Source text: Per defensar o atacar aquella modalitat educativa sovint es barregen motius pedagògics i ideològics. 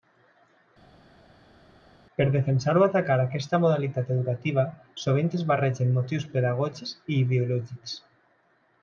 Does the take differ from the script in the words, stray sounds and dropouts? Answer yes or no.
yes